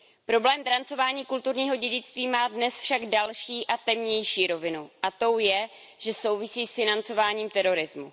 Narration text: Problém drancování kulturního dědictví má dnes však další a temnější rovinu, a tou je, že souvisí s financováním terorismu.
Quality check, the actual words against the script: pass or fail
pass